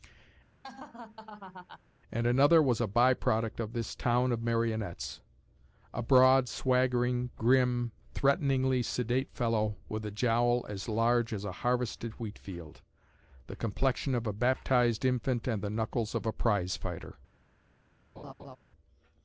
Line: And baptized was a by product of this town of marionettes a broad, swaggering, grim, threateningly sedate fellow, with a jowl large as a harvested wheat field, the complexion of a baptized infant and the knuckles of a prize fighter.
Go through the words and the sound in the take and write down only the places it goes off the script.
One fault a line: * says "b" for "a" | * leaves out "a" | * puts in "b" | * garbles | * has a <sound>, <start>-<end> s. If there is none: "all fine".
* has a laugh, 0.6-1.8 s
* says "another" for "baptized"
* puts in "as"
* has a laugh, 18.2-18.6 s